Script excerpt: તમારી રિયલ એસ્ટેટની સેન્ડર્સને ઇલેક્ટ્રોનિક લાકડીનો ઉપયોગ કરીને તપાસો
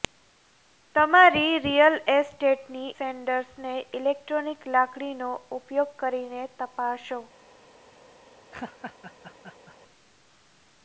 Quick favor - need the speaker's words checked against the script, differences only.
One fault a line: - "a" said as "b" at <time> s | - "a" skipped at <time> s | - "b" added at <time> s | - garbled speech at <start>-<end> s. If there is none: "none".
none